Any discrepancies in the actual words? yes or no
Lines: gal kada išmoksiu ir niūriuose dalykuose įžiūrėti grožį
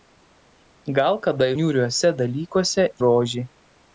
yes